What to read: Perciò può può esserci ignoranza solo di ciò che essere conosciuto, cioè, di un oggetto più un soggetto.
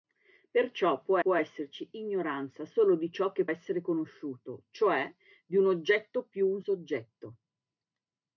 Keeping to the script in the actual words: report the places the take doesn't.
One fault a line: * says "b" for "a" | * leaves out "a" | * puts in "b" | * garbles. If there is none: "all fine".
all fine